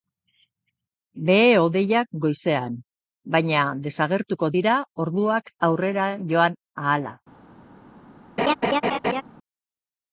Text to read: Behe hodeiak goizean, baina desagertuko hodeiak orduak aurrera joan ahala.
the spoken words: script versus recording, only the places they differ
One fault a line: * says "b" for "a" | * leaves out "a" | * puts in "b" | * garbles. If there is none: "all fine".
* says "dira" for "hodeiak"